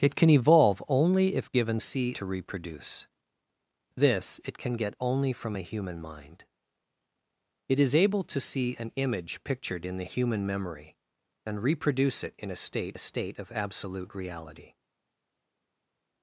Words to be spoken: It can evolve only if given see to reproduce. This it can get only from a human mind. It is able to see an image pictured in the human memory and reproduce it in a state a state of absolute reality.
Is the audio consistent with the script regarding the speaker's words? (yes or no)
yes